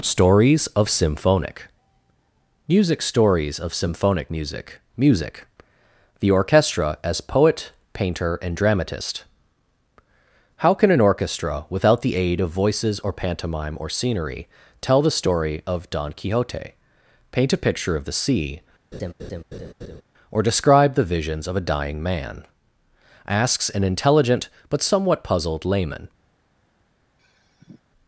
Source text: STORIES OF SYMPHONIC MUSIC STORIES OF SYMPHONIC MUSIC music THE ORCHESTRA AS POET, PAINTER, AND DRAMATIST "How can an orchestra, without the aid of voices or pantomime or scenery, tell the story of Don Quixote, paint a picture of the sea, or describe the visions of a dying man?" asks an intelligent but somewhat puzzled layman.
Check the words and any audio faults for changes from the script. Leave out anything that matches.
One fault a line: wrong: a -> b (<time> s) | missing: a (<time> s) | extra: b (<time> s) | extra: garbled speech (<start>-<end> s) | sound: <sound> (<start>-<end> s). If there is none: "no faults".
sound: laugh (18.9-20.0 s)
sound: sigh (27.2-27.8 s)